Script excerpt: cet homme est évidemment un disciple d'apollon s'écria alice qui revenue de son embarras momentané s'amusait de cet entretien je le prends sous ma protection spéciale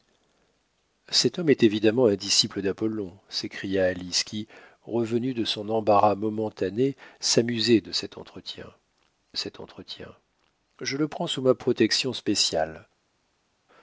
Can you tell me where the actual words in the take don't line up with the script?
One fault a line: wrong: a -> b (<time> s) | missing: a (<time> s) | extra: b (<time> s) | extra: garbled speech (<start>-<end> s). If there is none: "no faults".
extra: cet entretien (9.3 s)